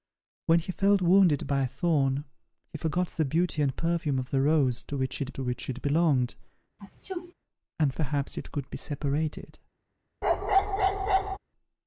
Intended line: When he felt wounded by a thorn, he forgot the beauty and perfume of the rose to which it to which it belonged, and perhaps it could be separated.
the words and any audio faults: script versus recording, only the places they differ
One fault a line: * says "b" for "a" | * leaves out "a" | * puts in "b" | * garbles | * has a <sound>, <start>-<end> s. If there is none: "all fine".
* has a sneeze, 6.8-7.3 s
* has a bark, 10.2-11.4 s